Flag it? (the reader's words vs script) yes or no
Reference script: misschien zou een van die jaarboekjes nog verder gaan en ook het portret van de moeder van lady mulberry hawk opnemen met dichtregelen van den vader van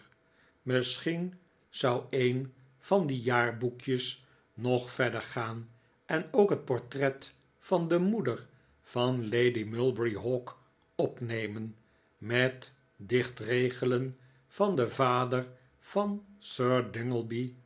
no